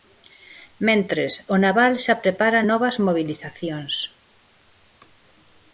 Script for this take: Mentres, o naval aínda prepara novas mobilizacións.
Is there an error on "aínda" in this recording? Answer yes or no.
yes